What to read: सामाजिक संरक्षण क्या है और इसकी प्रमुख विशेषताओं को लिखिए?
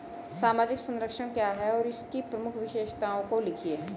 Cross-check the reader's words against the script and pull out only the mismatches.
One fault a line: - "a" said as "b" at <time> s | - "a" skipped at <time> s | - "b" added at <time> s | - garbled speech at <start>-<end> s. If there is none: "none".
none